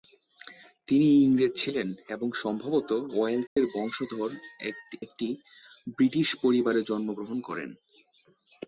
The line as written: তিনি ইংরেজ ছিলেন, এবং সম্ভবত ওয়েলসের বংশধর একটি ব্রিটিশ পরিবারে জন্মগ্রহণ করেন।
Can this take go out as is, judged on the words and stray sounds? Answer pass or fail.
fail